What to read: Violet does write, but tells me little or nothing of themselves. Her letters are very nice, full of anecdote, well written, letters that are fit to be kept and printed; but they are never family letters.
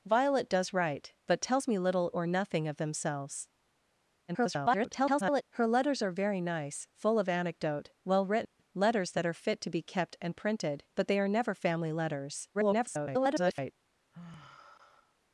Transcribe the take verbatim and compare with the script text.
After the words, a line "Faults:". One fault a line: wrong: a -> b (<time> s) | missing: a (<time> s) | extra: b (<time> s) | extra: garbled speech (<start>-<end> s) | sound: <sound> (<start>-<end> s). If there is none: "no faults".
Violet does write, but tells me little or nothing of themselves. [garbled] Her letters are very nice, full of anecdote, well written, letters that are fit to be kept and printed; but they are never family letters. [garbled]
Faults:
extra: garbled speech (4.3-5.4 s)
sound: dropout (8.4-8.6 s)
extra: garbled speech (12.5-13.7 s)
sound: sigh (14.1-15.2 s)